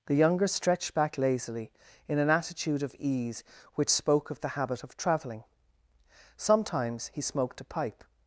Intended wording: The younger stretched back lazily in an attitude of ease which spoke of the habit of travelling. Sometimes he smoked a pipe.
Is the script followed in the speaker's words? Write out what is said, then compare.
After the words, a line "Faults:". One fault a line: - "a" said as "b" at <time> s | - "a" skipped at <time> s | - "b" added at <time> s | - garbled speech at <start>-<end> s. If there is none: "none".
The younger stretched back lazily in an attitude of ease which spoke of the habit of travelling. Sometimes he smoked a pipe.
Faults:
none